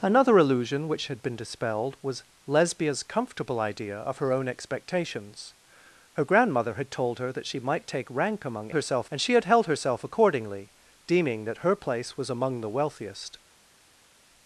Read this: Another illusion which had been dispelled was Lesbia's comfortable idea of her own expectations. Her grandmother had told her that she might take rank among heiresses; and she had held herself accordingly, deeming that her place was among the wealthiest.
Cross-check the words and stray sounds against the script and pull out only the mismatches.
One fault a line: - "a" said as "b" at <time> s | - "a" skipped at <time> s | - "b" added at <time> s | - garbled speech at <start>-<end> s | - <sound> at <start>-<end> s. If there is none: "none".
- "heiresses" said as "herself" at 8.7 s